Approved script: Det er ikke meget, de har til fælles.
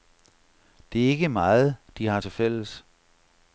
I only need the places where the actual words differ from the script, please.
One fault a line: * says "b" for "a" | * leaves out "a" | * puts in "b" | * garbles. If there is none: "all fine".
all fine